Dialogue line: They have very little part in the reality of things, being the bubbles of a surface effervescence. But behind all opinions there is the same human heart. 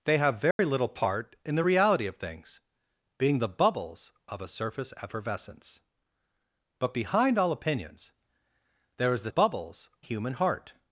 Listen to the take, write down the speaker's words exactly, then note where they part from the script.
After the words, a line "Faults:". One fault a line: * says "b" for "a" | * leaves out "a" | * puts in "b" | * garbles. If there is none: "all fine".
They have very little part in the reality of things, being the bubbles of a surface effervescence. But behind all opinions there is the bubbles human heart.
Faults:
* says "bubbles" for "same"